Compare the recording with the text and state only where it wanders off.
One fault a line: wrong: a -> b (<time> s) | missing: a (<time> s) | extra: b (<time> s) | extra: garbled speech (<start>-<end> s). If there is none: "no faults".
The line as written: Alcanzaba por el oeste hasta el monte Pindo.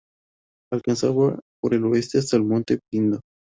no faults